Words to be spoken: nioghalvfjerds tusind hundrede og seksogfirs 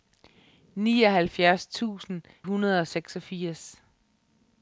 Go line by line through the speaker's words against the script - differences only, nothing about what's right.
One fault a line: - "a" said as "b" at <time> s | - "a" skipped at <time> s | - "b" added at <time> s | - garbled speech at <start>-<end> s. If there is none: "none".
none